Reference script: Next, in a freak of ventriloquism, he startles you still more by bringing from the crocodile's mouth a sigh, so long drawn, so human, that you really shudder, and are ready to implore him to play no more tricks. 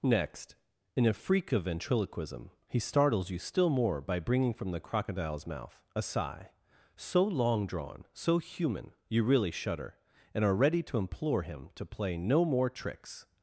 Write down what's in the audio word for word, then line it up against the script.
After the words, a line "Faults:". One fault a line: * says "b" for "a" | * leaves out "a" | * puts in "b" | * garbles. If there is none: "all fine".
Next, in a freak of ventriloquism, he startles you still more by bringing from the crocodile's mouth a sigh, so long drawn, so human, you really shudder, and are ready to implore him to play no more tricks.
Faults:
* leaves out "that"